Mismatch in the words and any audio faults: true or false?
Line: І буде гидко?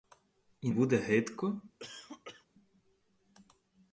true